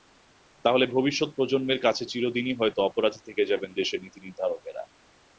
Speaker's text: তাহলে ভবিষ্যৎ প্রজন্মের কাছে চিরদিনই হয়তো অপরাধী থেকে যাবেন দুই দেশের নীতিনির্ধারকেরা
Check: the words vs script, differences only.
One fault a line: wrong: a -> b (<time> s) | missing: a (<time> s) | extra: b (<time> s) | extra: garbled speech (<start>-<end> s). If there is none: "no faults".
missing: দুই (3.7 s)